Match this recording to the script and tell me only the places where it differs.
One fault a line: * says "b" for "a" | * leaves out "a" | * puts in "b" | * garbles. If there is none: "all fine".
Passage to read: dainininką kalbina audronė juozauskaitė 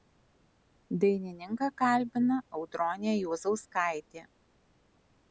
all fine